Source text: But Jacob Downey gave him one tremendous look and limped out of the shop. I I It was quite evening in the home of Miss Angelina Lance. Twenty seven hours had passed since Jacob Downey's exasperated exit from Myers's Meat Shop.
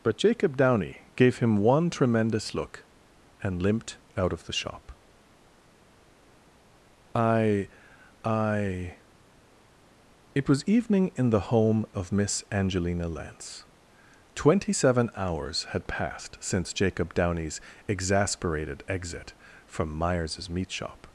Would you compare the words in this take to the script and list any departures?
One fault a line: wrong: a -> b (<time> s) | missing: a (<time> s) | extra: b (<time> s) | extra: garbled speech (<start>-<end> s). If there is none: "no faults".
missing: quite (10.6 s)